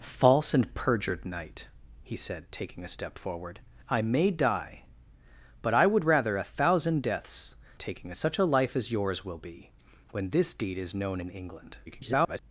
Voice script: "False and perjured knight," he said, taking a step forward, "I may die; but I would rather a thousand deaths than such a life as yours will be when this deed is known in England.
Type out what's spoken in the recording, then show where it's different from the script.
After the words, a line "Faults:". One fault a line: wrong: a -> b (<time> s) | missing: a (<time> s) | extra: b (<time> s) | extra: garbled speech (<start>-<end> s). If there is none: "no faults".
"False and perjured knight," he said, taking a step forward, "I may die; but I would rather a thousand deaths taking such a life as yours will be when this deed is known in England. [garbled]
Faults:
wrong: than -> taking (7.8 s)
extra: garbled speech (11.9-12.4 s)